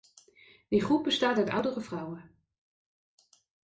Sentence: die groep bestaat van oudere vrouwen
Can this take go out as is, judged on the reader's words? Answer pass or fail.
fail